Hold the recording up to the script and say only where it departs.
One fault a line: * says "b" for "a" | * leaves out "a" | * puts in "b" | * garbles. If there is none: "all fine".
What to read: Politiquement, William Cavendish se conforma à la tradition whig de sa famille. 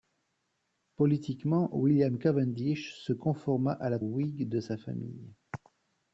* leaves out "tradition"